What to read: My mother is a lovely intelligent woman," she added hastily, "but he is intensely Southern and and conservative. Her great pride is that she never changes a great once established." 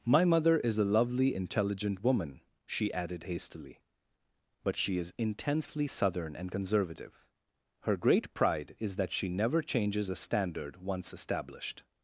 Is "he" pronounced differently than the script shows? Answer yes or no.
yes